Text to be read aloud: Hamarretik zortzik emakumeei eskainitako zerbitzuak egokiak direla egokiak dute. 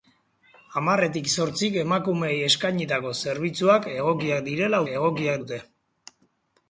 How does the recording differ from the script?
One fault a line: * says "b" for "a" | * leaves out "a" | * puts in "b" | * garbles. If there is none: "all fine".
all fine